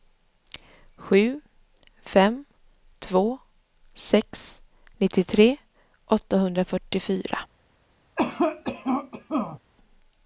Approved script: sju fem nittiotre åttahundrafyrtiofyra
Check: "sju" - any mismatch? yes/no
no